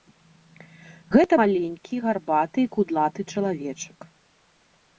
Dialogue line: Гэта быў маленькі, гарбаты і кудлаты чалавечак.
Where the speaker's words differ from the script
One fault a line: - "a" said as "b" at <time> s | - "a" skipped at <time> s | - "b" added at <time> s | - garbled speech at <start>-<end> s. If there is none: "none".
- "быў" skipped at 1.3 s